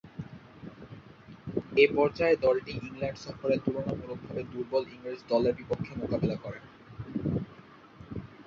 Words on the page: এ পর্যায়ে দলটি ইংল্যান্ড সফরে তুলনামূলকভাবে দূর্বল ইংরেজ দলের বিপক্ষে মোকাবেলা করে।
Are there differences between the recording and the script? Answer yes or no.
no